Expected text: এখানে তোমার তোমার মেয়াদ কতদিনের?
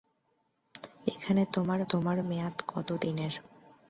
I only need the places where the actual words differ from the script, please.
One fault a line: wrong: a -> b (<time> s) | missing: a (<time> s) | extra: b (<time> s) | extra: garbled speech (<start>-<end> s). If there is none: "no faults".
no faults